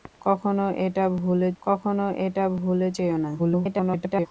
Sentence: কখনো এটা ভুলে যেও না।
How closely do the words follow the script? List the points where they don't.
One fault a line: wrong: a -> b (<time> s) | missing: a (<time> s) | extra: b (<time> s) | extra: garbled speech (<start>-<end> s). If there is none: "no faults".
extra: কখনো এটা ভুলে (1.6 s)
extra: garbled speech (3.4-4.3 s)